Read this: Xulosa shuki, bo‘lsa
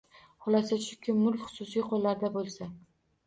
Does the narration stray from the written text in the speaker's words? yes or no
yes